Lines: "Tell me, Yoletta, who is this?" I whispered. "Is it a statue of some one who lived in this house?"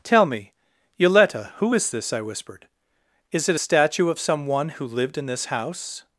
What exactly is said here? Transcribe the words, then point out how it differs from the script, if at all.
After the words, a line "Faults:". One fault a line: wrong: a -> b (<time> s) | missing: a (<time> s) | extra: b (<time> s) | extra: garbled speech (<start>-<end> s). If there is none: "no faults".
"Tell me, Yoletta, who is this?" I whispered. "Is it a statue of some one who lived in this house?"
Faults:
no faults